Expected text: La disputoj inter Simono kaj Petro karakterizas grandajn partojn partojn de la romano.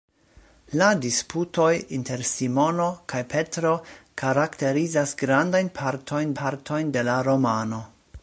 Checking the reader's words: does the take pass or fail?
pass